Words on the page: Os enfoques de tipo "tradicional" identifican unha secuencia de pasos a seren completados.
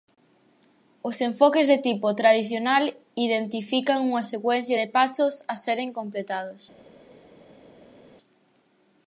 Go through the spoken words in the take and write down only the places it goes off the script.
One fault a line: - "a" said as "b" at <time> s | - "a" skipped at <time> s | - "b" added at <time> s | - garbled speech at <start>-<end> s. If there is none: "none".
none